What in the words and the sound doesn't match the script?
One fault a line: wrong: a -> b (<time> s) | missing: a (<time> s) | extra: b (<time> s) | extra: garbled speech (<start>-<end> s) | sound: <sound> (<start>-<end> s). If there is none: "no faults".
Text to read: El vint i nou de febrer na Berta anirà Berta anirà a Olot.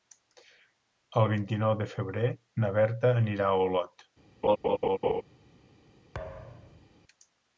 missing: Berta anirà (3.5 s)
sound: laugh (4.4-5.2 s)
sound: thud (6.1-6.9 s)